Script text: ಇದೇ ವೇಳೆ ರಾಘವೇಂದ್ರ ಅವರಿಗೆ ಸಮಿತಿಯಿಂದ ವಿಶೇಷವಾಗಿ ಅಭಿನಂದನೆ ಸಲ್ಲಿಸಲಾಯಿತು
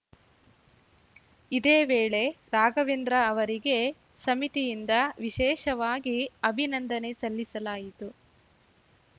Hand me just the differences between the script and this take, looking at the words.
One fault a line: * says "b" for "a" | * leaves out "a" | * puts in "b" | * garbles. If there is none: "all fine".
all fine